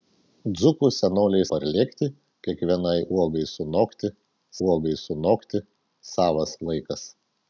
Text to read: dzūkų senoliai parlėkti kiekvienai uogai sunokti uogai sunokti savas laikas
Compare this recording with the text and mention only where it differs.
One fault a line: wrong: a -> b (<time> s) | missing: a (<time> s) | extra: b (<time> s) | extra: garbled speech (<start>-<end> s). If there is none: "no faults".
no faults